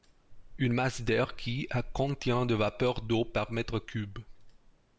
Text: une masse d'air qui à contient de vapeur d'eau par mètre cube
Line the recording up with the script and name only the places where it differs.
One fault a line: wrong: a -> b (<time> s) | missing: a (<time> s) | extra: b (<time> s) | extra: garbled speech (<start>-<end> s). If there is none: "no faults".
no faults